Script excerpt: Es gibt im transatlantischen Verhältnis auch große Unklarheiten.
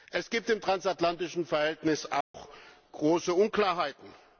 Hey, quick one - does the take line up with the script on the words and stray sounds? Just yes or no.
no